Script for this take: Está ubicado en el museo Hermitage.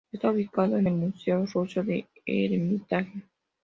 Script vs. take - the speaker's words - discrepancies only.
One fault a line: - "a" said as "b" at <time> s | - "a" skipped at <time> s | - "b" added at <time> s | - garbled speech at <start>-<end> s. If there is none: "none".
- "ruso del" added at 1.5 s